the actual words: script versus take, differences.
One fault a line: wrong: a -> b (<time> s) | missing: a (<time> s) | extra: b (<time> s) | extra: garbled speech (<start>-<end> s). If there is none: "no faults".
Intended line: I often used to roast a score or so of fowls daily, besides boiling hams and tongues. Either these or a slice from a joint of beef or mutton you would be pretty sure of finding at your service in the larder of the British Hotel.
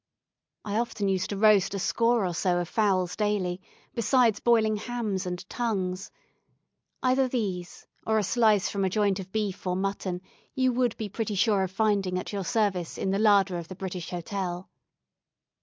no faults